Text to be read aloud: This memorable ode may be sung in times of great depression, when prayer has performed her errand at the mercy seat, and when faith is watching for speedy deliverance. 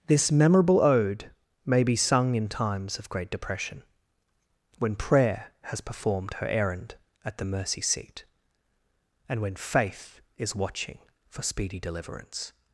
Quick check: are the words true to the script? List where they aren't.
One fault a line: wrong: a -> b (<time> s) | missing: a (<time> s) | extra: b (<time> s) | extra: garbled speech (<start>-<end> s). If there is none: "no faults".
no faults